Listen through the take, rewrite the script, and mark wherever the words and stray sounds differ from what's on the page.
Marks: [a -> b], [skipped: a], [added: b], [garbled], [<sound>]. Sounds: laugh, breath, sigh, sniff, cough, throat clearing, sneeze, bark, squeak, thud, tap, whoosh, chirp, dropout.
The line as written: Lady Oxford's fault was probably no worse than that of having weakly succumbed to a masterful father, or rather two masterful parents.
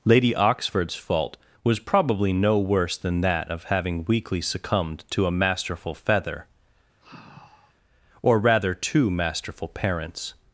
Lady Oxford's fault was probably no worse than that of having weakly succumbed to a masterful [father, -> feather] [sigh] or rather two masterful parents.